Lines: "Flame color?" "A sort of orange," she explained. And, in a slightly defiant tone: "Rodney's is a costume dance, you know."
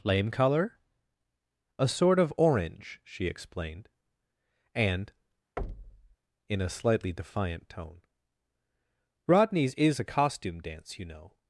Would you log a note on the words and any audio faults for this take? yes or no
yes